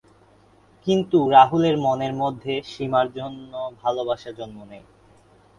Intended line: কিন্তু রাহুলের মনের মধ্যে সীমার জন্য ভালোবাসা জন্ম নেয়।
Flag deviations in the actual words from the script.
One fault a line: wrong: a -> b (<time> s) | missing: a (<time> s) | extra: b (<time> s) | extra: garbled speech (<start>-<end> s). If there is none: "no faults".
no faults